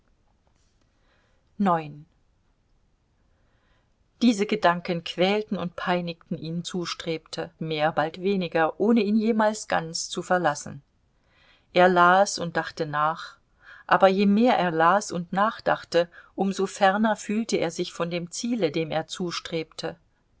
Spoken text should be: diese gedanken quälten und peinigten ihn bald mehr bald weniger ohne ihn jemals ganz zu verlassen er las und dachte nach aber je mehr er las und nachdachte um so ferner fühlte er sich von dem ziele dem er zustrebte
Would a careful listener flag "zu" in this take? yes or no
no